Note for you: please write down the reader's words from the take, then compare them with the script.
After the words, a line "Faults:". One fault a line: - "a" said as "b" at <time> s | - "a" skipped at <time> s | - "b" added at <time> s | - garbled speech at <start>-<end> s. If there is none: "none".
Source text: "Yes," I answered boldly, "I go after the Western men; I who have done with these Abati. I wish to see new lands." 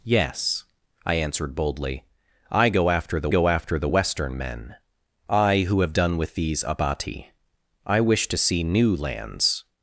"Yes," I answered boldly, "I go after the go after the Western men; I who have done with these Abati. I wish to see new lands."
Faults:
- "go after the" added at 3.3 s